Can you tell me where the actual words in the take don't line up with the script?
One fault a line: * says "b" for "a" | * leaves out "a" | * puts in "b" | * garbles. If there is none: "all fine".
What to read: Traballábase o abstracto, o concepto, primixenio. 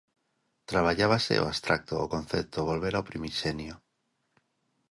* puts in "volver ao"